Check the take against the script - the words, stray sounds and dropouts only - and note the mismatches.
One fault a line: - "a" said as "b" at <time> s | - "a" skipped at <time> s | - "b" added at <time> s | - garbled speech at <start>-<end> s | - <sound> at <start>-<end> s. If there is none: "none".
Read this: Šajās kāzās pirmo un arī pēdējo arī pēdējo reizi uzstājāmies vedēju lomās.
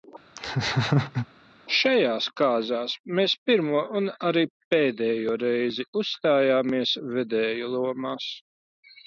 - laugh at 0.4-1.3 s
- "mēs" added at 3.2 s
- "arī pēdējo" skipped at 5.3 s